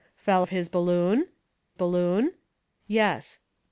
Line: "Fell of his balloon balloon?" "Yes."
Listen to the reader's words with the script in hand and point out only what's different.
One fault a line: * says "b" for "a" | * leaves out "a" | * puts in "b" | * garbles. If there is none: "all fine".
all fine